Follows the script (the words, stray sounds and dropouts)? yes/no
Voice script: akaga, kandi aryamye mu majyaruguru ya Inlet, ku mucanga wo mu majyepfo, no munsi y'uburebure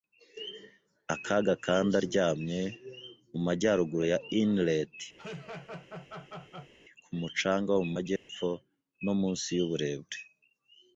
no